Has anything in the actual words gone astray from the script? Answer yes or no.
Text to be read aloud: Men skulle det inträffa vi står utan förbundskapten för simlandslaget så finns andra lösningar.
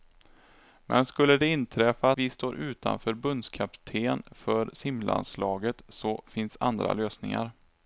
no